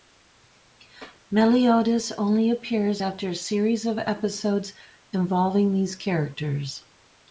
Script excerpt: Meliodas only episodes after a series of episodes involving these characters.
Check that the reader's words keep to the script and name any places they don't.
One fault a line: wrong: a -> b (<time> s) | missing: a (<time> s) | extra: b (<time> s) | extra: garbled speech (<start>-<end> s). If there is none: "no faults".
wrong: episodes -> appears (2.5 s)